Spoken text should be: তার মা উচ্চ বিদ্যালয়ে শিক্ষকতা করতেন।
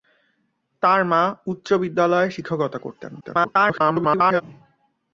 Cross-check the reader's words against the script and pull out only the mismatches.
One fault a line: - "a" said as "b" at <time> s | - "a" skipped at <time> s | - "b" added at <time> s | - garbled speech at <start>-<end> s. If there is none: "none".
- garbled speech at 3.2-4.4 s